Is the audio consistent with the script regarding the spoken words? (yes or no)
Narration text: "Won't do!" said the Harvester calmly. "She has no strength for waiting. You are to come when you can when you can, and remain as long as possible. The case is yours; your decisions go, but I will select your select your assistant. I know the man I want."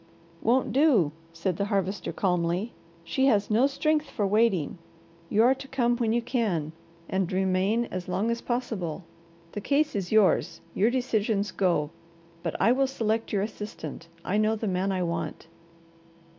no